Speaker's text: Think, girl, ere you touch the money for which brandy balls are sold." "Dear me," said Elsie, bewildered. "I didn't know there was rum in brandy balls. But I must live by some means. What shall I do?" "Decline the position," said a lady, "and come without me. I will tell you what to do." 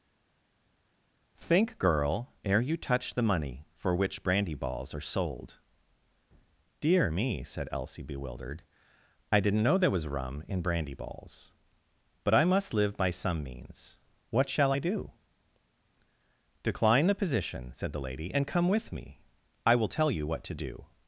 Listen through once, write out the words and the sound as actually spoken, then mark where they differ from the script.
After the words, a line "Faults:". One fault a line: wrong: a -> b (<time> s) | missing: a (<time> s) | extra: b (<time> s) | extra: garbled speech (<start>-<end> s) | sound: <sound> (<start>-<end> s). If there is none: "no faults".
Think, girl, ere you touch the money for which brandy balls are sold." "Dear me," said Elsie, bewildered. "I didn't know there was rum in brandy balls. But I must live by some means. What shall I do?" "Decline the position," said the lady, "and come with me. I will tell you what to do."
Faults:
wrong: a -> the (17.9 s)
wrong: without -> with (18.7 s)